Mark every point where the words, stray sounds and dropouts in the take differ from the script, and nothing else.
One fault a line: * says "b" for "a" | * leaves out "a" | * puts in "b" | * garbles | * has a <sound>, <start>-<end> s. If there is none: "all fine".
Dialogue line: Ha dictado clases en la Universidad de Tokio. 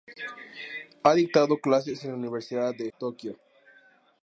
all fine